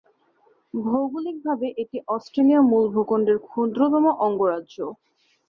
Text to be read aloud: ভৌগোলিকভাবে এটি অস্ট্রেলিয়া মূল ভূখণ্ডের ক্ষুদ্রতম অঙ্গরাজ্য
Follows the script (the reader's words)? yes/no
yes